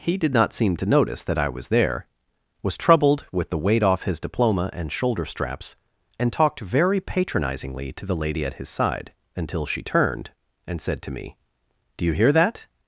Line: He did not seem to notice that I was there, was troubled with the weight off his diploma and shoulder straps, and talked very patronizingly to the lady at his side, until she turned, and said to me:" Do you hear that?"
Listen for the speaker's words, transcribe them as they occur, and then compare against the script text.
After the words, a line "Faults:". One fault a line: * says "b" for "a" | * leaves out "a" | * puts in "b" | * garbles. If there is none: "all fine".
He did not seem to notice that I was there, was troubled with the weight off his diploma and shoulder straps, and talked very patronizingly to the lady at his side, until she turned, and said to me:" Do you hear that?"
Faults:
all fine